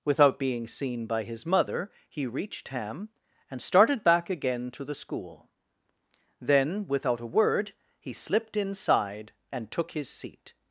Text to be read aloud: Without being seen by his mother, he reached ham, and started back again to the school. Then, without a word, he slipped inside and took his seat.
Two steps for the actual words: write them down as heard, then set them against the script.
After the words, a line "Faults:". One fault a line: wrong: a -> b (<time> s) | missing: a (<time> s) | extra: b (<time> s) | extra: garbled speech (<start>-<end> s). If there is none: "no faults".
Without being seen by his mother, he reached ham, and started back again to the school. Then, without a word, he slipped inside and took his seat.
Faults:
no faults